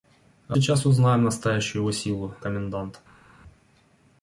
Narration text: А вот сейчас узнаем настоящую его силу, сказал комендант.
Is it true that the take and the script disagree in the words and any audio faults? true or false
true